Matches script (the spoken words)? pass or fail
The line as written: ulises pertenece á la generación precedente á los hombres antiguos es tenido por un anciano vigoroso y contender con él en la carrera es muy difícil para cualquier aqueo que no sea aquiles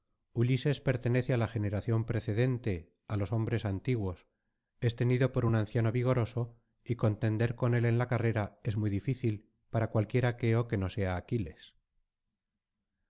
pass